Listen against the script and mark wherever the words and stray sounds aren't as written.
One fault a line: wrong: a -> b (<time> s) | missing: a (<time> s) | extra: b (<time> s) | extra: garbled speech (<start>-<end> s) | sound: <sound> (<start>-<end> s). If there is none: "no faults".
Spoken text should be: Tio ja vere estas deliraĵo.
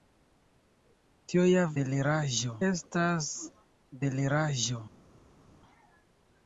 wrong: vere -> deliraĵo (1.8 s)